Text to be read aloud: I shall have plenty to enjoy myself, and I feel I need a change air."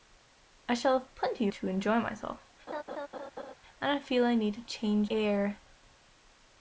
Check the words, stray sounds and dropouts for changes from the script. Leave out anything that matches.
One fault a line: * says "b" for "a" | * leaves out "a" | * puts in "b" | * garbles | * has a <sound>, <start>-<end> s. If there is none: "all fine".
* has a laugh, 2.7-3.5 s